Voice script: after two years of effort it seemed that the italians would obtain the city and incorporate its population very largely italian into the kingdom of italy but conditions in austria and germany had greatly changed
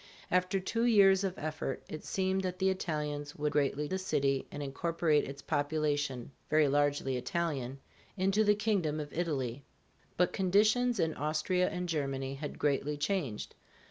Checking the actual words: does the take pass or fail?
fail